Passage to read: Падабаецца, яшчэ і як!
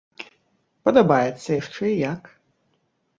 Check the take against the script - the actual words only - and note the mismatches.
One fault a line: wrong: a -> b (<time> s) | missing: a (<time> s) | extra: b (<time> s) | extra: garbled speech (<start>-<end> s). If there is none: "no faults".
no faults